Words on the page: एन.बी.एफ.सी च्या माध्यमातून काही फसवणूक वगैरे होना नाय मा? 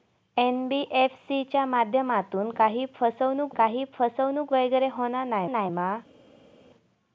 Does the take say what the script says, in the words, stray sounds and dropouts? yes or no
no